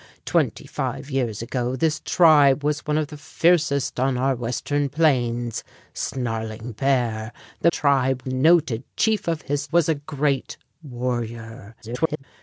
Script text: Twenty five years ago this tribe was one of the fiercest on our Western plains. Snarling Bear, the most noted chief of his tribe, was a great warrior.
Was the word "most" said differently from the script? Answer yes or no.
yes